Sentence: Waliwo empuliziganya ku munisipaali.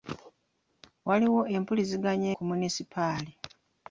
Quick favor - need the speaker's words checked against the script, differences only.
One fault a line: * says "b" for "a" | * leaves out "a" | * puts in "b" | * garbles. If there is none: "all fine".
all fine